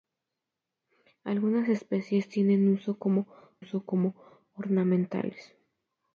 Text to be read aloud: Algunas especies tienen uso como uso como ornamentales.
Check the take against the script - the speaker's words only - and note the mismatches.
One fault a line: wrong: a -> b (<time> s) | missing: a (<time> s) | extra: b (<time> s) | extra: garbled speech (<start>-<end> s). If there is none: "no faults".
no faults